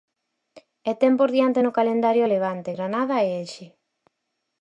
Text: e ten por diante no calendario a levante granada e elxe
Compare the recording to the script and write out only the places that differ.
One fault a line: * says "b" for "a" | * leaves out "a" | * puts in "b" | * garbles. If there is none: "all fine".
all fine